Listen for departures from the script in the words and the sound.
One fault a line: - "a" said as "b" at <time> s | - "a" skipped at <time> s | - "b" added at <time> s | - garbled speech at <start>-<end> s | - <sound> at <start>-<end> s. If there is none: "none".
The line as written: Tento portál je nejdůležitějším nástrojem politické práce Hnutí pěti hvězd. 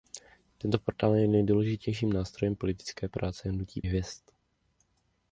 - "pěti" skipped at 3.8 s